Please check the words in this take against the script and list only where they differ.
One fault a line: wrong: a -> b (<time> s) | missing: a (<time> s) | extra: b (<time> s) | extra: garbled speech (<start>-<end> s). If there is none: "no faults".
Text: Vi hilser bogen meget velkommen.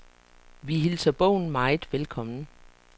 no faults